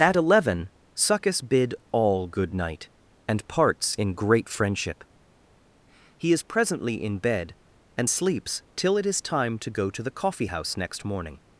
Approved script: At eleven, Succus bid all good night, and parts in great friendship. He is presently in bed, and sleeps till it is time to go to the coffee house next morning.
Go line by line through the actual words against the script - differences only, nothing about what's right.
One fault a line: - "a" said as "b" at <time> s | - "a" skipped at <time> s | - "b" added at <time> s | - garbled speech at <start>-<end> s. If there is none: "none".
none